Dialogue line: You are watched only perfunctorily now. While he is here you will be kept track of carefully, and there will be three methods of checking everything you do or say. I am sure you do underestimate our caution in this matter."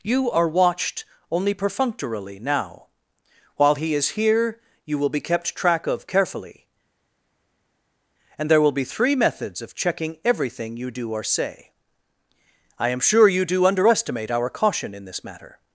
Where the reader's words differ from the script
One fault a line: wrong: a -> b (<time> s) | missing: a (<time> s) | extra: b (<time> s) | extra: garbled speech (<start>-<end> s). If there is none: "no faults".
no faults